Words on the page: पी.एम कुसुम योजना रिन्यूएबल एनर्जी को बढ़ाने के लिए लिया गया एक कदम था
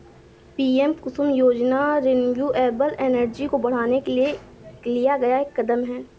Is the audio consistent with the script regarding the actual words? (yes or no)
no